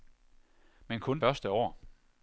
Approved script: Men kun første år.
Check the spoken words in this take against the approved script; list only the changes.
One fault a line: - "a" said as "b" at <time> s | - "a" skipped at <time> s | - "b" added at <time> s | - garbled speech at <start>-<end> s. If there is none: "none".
none